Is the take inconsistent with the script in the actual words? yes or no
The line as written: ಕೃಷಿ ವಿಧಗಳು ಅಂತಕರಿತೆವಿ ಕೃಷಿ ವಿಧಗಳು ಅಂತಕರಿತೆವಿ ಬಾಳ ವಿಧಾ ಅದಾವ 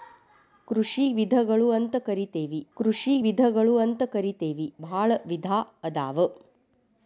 no